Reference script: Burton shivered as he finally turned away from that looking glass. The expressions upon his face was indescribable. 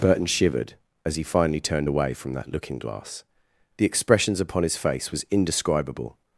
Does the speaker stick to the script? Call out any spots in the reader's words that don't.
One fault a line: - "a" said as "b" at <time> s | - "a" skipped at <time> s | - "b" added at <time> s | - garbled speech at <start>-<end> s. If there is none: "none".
none